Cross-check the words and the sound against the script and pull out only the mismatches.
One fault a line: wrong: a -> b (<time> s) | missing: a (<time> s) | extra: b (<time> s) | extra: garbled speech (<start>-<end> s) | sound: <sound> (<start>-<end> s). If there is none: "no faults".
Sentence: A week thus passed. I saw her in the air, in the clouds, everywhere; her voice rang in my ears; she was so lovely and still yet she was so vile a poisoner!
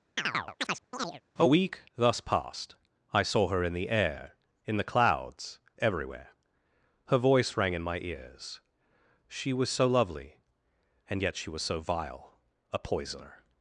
sound: chirp (0.2-1.2 s)
missing: still (11.2 s)